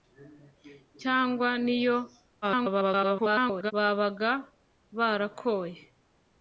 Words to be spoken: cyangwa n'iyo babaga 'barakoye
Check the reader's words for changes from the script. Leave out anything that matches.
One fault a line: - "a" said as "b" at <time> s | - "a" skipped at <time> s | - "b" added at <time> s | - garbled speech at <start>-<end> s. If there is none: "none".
- garbled speech at 2.4-3.7 s